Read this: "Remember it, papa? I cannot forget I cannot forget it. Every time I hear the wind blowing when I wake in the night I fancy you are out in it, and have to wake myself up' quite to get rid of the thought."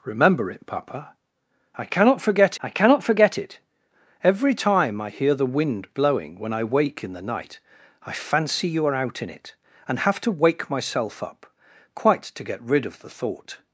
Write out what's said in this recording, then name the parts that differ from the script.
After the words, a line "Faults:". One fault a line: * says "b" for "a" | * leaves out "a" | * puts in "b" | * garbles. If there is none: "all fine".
"Remember it, papa? I cannot forget I cannot forget it. Every time I hear the wind blowing when I wake in the night I fancy you are out in it, and have to wake myself up' quite to get rid of the thought."
Faults:
all fine